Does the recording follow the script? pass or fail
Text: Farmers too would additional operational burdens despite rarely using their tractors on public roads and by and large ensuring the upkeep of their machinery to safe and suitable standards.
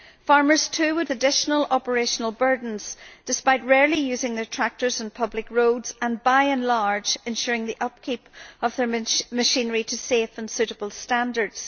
pass